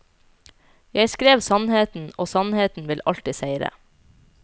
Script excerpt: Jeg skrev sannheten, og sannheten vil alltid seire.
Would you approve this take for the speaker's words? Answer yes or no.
yes